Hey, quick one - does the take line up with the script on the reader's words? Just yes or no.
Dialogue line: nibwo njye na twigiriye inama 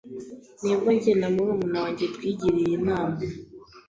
no